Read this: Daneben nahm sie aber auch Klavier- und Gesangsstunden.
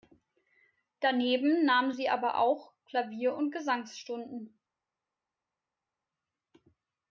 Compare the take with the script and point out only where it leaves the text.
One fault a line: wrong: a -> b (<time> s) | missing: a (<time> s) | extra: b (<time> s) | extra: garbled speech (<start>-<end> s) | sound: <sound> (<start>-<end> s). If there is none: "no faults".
no faults